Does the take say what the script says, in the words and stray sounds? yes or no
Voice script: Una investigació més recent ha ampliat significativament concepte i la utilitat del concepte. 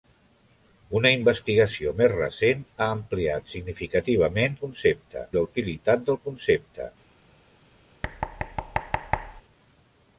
no